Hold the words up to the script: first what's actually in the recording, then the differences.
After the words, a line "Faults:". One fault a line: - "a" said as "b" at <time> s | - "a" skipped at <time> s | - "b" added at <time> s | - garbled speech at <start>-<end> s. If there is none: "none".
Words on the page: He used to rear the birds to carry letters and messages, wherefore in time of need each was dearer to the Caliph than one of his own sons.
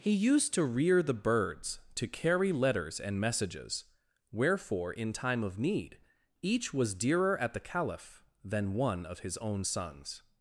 He used to rear the birds to carry letters and messages, wherefore in time of need each was dearer at the Caliph than one of his own sons.
Faults:
- "to" said as "at" at 7.4 s